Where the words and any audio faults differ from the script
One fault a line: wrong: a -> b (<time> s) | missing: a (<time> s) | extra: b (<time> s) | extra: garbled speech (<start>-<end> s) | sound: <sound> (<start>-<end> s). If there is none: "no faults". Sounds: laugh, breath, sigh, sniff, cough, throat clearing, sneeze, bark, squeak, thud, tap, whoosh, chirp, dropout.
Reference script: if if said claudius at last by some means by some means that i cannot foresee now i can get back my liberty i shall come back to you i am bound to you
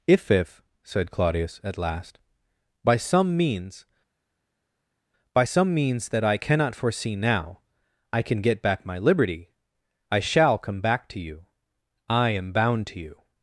no faults